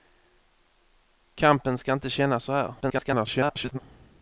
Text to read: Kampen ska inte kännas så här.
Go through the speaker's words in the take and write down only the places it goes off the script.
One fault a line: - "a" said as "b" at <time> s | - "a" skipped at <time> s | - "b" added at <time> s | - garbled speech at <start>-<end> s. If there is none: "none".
- garbled speech at 2.8-3.8 s